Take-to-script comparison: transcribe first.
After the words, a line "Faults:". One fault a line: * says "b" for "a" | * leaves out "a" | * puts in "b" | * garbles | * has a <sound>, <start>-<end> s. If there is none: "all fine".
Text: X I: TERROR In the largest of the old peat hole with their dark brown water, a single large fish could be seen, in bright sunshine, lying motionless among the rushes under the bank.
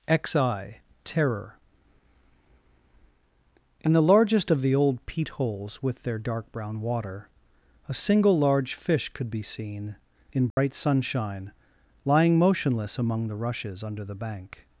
X I: TERROR In the largest of the old peat holes with their dark brown water, a single large fish could be seen, in bright sunshine, lying motionless among the rushes under the bank.
Faults:
* says "holes" for "hole"
* has a dropout, 10.5-10.6 s